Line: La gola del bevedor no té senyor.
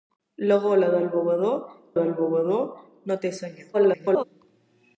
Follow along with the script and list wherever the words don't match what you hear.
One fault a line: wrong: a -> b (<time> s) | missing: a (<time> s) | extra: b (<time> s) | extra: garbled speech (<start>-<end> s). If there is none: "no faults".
extra: del bevedor (2.0 s)
extra: garbled speech (3.7-4.2 s)